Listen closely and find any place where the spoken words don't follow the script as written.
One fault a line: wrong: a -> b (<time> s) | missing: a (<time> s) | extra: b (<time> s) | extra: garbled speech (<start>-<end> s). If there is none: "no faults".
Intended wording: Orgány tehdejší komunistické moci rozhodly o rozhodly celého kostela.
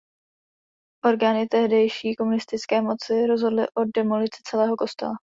wrong: rozhodly -> demolici (4.0 s)